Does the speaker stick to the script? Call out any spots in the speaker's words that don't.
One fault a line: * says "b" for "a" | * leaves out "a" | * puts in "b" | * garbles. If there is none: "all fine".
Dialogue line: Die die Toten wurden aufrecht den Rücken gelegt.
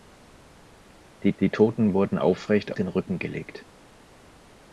all fine